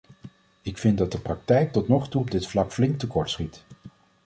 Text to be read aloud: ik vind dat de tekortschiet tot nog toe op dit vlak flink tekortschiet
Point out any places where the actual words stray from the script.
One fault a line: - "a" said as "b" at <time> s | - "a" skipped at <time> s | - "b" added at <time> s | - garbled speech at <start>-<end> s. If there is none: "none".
- "tekortschiet" said as "praktijk" at 1.2 s